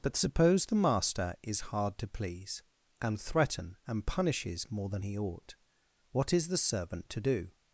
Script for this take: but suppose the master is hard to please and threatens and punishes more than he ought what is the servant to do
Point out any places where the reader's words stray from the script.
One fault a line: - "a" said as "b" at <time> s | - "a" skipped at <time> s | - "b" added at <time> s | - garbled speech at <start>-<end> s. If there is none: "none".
- "threatens" said as "threaten" at 3.2 s